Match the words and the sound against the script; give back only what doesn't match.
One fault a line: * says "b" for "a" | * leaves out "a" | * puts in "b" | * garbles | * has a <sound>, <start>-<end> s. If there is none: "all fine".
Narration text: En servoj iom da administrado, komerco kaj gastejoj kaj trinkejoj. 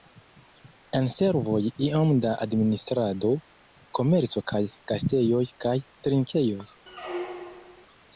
* has a squeak, 6.9-7.9 s